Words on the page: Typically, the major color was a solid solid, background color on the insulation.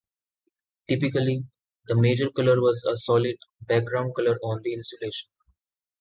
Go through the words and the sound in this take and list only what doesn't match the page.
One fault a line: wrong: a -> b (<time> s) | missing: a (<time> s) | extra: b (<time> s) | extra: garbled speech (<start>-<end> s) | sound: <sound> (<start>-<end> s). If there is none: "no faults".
missing: solid (3.4 s)